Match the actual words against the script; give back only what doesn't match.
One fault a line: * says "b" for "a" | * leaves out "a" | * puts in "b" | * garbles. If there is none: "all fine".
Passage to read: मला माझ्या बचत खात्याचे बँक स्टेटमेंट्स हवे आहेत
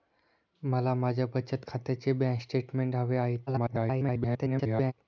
* garbles